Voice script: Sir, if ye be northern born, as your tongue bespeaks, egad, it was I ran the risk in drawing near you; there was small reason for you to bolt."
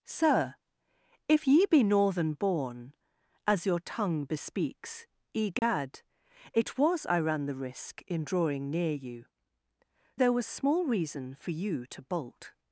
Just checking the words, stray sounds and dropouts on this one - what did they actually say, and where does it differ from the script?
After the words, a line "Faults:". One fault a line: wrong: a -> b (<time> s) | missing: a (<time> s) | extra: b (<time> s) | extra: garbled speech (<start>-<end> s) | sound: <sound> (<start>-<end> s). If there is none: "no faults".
Sir, if ye be northern born, as your tongue bespeaks, egad, it was I ran the risk in drawing near you; there was small reason for you to bolt."
Faults:
sound: dropout (5.6-5.6 s)